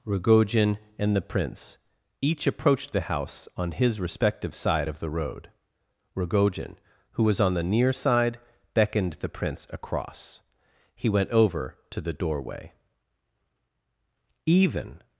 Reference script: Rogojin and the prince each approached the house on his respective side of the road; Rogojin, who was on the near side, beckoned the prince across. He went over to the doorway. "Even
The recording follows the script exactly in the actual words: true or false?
true